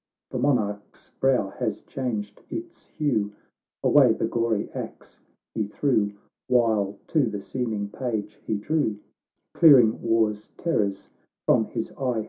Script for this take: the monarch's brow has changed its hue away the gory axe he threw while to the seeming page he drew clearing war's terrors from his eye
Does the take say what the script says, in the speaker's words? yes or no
yes